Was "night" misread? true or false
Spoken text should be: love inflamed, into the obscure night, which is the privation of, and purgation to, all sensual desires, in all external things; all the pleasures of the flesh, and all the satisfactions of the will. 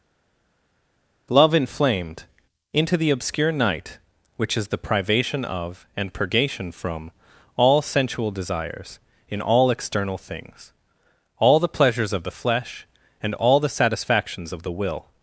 false